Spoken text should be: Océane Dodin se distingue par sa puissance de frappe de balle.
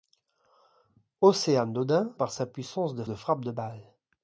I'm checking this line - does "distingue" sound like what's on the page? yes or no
no